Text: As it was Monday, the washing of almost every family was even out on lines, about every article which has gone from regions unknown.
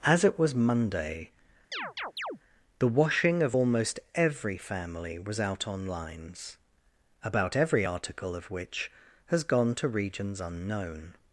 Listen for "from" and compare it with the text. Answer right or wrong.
wrong